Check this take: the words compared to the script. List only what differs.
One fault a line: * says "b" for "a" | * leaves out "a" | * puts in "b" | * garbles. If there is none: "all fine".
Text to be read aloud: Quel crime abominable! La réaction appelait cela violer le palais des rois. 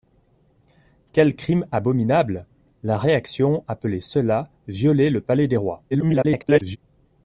* garbles